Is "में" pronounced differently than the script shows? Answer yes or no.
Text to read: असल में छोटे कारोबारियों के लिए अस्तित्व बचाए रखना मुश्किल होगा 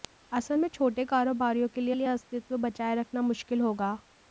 no